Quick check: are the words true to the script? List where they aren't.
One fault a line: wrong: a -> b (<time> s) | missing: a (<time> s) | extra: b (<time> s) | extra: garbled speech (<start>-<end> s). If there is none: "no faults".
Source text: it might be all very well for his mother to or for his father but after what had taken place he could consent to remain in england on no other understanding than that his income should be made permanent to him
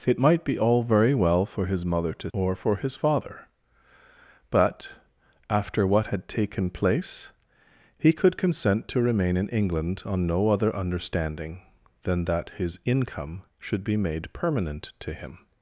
no faults